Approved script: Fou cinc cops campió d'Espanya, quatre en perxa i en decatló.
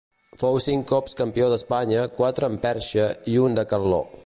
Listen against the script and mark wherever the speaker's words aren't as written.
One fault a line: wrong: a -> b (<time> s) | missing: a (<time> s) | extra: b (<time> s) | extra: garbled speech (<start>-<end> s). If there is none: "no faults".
no faults